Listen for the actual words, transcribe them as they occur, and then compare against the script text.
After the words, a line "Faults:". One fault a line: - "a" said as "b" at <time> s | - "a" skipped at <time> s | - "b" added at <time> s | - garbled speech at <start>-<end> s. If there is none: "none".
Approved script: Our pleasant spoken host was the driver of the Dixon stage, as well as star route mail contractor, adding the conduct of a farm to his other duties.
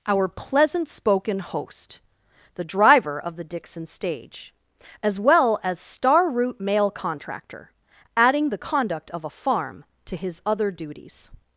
Our pleasant spoken host the driver of the Dixon stage, as well as star route mail contractor, adding the conduct of a farm to his other duties.
Faults:
- "was" skipped at 2.0 s